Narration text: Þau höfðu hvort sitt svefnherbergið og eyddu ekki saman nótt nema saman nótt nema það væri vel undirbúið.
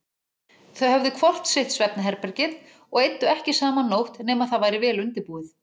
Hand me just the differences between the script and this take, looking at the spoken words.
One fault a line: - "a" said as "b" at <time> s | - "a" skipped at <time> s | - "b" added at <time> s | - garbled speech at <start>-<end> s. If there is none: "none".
- "saman nótt nema" skipped at 4.5 s